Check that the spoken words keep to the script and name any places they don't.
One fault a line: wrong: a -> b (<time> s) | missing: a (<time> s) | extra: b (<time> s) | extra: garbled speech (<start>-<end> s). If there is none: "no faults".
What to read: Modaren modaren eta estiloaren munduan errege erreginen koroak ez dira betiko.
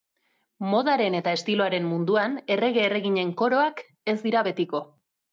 missing: modaren (1.2 s)